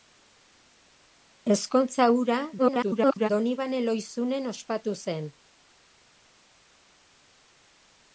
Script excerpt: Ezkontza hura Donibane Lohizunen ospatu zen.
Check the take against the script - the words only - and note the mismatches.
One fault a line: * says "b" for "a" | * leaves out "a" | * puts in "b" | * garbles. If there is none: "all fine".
* garbles